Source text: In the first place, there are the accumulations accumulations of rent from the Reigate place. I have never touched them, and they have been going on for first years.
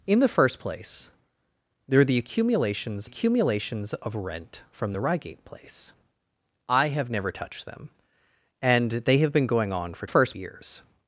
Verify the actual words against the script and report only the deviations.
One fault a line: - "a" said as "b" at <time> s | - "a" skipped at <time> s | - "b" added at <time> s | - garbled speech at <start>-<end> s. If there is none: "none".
none